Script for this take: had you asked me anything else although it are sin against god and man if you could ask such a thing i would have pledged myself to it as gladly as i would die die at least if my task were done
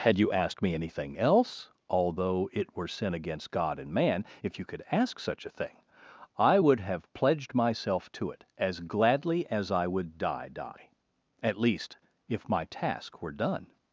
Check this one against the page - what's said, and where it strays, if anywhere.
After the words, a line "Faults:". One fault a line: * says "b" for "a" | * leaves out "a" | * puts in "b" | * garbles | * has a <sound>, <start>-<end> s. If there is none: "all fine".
had you asked me anything else although it were sin against god and man if you could ask such a thing i would have pledged myself to it as gladly as i would die die at least if my task were done
Faults:
* says "were" for "are"